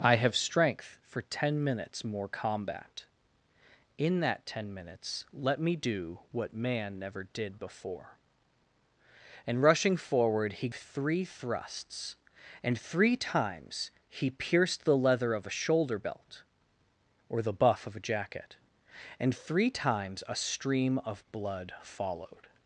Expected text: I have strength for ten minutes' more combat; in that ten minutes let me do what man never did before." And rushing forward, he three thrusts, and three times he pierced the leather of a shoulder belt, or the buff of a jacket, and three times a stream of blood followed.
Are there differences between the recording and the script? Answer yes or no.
no